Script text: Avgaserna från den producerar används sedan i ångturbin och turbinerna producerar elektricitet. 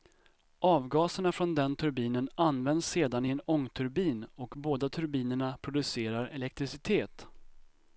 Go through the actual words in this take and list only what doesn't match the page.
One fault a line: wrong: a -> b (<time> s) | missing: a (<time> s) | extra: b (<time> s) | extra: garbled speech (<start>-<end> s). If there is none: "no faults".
wrong: producerar -> turbinen (1.8 s)
extra: en (3.3 s)
extra: båda (4.6 s)